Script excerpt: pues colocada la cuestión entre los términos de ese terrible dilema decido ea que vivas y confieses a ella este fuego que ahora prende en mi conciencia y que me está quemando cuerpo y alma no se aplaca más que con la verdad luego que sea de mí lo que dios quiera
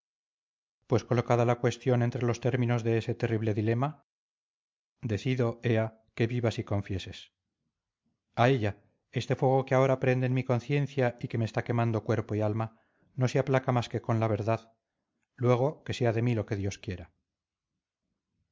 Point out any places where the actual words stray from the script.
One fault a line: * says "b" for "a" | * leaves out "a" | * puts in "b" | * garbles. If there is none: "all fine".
all fine